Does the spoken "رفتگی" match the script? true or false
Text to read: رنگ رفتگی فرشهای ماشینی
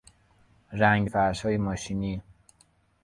false